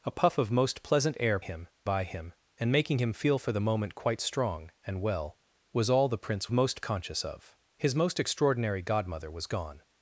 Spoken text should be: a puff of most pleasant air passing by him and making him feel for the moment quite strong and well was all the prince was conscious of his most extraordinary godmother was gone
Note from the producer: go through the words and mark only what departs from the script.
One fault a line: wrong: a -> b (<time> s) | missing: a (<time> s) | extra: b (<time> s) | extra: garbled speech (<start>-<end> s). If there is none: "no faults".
wrong: passing -> him (1.4 s)
wrong: was -> most (6.5 s)